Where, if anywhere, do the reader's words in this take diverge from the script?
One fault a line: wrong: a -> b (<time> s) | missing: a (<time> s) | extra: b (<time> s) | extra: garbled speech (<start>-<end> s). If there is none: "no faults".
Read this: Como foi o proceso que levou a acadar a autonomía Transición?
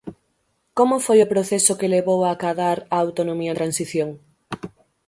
no faults